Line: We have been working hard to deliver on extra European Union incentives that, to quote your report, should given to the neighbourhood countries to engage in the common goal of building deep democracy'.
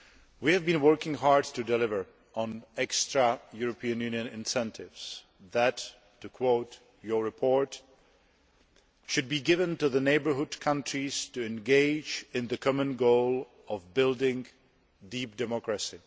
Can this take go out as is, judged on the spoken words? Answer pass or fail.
fail